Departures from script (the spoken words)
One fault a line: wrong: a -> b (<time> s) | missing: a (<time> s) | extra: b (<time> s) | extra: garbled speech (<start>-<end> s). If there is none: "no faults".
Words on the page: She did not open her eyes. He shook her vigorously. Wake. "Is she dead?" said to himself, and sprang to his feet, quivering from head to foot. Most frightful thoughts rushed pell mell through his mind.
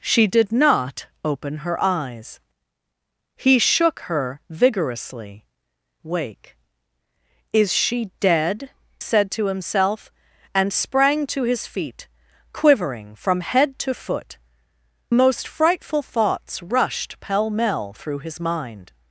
no faults